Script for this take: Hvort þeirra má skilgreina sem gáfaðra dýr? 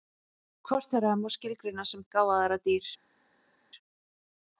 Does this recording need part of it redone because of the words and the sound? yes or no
no